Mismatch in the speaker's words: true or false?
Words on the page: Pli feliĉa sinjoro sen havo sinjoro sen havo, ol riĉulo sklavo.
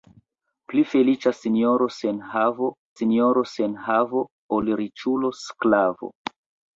false